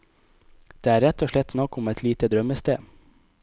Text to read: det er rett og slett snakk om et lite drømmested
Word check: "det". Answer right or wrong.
right